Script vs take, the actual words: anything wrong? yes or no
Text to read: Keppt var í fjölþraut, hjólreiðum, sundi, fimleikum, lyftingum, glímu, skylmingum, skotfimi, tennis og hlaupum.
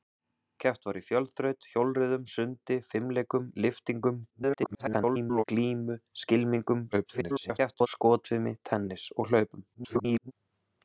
yes